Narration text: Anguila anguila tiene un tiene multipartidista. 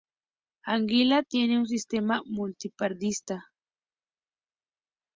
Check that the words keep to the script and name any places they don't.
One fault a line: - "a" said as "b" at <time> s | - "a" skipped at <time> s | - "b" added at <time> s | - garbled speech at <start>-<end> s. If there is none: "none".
- "anguila" skipped at 1.2 s
- "tiene" said as "sistema" at 1.7 s